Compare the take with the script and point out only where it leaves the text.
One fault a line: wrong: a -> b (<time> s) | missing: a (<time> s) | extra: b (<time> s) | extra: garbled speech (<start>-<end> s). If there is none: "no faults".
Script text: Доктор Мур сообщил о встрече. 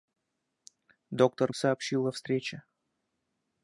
missing: Мур (1.5 s)